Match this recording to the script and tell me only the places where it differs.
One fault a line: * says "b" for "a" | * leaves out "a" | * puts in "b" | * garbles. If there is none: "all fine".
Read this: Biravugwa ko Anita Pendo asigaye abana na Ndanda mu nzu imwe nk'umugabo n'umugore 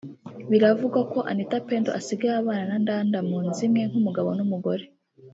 all fine